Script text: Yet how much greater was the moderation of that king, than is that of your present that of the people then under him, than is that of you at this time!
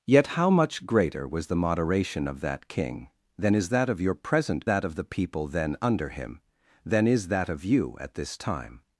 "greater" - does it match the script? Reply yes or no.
yes